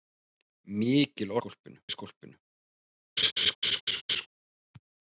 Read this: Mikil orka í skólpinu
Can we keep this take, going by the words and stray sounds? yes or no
no